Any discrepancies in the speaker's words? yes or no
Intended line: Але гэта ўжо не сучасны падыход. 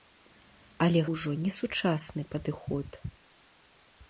yes